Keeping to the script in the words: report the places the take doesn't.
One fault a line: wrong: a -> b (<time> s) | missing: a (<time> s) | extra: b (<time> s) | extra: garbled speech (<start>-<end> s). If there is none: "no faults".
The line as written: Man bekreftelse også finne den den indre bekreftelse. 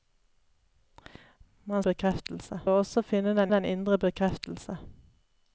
no faults